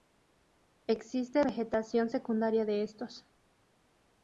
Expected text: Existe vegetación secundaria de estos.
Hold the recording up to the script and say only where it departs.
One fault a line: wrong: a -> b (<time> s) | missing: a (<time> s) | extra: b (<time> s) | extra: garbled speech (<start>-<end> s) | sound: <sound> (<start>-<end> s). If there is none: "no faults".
no faults